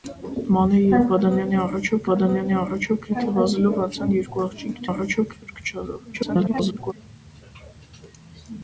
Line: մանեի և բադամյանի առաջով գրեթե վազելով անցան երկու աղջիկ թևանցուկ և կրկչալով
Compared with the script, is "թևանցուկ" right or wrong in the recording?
wrong